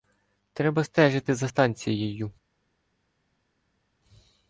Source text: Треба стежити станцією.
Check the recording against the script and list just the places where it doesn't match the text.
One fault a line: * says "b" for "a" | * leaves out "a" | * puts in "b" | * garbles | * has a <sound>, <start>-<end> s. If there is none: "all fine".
* puts in "за"